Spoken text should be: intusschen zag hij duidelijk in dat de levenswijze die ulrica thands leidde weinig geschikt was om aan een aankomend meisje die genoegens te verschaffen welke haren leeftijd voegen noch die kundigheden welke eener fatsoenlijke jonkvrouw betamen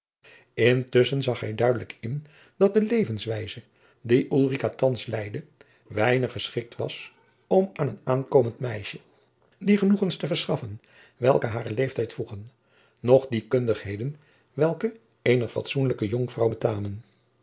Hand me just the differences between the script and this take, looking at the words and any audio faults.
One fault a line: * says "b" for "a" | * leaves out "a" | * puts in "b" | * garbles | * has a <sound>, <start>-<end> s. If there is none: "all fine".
all fine